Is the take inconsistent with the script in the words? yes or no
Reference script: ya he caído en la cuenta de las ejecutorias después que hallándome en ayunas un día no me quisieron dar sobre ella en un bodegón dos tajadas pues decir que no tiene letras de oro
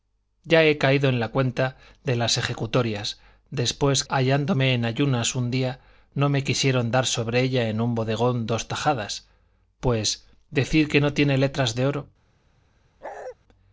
yes